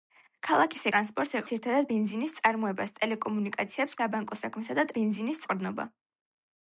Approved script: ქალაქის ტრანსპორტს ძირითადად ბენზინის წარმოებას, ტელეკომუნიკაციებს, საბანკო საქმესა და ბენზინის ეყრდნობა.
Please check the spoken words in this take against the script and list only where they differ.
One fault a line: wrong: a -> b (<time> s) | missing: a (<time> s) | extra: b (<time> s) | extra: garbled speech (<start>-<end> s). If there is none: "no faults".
no faults